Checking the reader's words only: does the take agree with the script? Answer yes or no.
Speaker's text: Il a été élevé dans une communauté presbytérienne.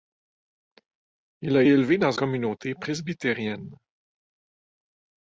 no